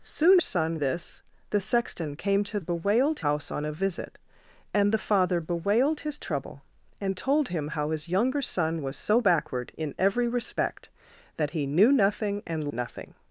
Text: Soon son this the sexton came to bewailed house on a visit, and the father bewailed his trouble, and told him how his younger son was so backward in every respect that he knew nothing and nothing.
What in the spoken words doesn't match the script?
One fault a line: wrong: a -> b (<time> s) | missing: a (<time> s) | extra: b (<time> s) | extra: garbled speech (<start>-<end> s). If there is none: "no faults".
no faults